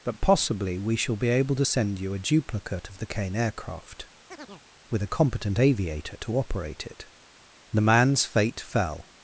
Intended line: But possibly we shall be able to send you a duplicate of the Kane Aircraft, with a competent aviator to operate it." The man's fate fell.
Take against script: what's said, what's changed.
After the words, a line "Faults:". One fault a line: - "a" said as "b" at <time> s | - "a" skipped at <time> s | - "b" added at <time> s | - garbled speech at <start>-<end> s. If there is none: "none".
But possibly we shall be able to send you a duplicate of the Kane Aircraft, with a competent aviator to operate it." The man's fate fell.
Faults:
none